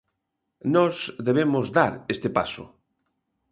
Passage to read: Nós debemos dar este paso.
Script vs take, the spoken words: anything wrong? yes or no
no